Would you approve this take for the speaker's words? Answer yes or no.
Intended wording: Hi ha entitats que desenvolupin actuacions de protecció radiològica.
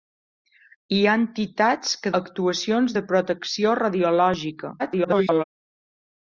no